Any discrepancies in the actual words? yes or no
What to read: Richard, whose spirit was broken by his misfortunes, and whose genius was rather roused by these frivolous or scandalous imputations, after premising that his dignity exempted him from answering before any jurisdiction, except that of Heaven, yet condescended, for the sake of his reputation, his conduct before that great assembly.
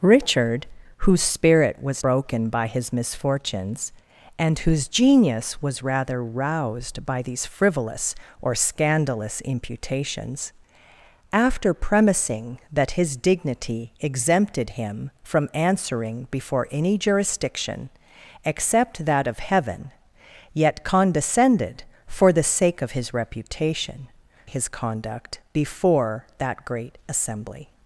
no